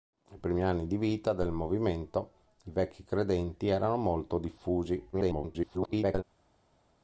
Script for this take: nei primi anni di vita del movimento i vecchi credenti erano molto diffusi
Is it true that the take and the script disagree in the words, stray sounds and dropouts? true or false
true